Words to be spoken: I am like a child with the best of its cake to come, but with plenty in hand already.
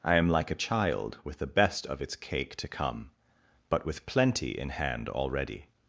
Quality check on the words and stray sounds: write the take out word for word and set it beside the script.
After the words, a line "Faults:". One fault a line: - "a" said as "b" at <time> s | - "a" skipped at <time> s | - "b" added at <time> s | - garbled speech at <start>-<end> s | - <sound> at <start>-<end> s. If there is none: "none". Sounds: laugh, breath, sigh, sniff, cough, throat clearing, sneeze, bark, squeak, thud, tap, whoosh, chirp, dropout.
I am like a child with the best of its cake to come, but with plenty in hand already.
Faults:
none